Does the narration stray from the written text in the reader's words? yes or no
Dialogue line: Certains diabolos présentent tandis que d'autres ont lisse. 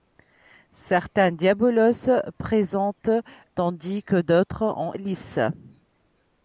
no